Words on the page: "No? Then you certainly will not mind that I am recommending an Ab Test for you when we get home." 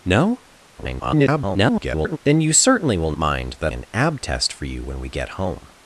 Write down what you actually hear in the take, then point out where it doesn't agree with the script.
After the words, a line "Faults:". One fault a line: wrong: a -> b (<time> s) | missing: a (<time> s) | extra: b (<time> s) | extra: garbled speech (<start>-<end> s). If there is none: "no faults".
"No? [garbled] Then you certainly will mind that an Ab Test for you when we get home."
Faults:
extra: garbled speech (0.8-2.2 s)
missing: not (3.1 s)
missing: I am recommending (3.7 s)